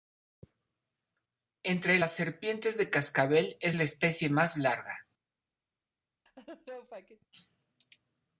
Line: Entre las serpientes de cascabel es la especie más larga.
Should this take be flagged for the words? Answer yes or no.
no